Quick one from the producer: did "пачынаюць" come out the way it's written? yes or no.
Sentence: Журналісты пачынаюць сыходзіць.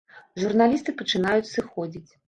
yes